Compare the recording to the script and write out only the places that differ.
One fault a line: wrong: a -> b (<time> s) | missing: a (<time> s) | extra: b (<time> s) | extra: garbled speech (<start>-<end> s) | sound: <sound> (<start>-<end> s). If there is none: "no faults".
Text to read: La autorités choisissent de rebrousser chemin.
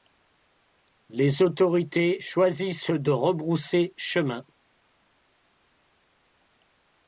wrong: La -> Les (1.1 s)